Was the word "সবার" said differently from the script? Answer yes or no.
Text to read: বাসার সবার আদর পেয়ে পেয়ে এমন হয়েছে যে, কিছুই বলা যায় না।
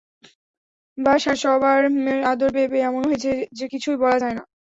no